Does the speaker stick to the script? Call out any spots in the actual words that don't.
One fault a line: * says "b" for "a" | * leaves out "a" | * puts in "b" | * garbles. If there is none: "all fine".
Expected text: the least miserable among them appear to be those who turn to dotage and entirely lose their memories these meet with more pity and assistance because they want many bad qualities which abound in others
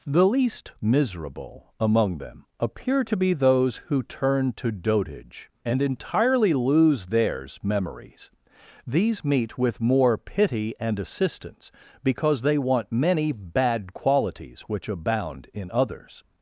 * says "theirs" for "their"